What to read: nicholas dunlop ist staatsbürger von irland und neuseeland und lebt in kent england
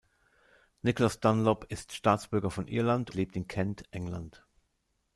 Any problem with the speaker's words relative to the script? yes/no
yes